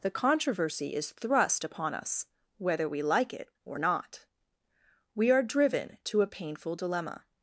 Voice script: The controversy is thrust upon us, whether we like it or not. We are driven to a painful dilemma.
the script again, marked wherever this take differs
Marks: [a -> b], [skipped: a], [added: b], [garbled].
The controversy is thrust upon us, whether we like it or not. We are driven to a painful dilemma.